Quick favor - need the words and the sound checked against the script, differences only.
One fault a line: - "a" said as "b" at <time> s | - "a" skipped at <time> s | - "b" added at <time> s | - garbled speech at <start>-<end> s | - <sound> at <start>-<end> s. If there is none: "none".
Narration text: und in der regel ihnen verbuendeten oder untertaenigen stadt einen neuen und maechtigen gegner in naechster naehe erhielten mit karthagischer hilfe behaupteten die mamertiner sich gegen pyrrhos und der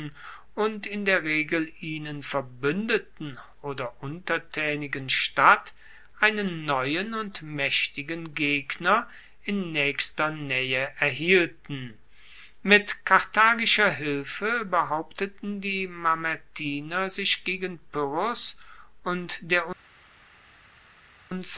none